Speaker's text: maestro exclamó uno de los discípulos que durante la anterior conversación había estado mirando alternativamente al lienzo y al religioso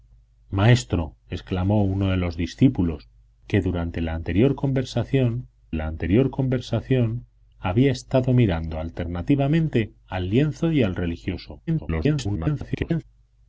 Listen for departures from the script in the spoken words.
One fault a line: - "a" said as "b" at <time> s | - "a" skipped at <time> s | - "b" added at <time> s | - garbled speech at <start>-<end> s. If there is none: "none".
- "la anterior conversación" added at 5.7 s
- garbled speech at 11.7-13.0 s